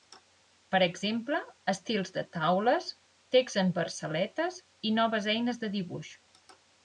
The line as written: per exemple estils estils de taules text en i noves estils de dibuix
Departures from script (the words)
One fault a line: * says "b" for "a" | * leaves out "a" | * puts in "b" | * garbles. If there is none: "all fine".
* leaves out "estils"
* puts in "versaletes"
* says "eines" for "estils"